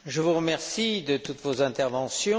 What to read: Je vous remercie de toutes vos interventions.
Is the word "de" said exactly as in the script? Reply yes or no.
yes